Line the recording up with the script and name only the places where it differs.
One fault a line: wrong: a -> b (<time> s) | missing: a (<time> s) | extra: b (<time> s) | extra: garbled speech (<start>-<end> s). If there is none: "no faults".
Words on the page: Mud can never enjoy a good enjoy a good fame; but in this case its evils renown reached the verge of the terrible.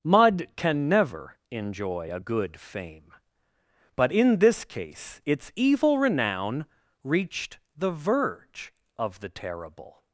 missing: enjoy a good (2.6 s)
wrong: evils -> evil (5.5 s)